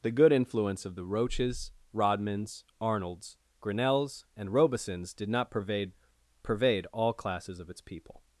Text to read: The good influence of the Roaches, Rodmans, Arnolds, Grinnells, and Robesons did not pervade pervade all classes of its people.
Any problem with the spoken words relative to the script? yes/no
no